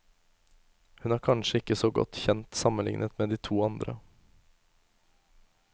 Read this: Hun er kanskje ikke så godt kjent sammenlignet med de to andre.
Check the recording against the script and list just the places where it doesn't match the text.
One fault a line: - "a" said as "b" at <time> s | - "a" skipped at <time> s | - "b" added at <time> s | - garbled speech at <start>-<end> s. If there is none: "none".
none